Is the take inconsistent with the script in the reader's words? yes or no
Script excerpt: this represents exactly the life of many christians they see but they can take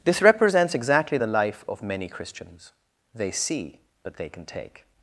no